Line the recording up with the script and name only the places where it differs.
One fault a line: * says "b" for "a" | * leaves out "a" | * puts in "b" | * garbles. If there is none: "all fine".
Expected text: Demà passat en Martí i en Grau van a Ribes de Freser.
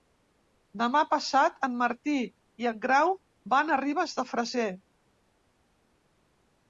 all fine